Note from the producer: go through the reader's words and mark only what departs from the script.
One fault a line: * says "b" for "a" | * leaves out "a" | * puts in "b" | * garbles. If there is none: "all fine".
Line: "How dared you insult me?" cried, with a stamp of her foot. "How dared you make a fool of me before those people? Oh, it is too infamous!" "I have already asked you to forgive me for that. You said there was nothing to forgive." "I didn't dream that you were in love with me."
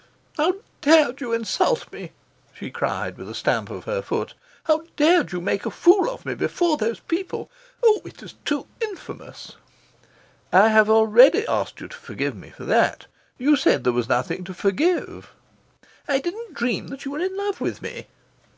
* puts in "she"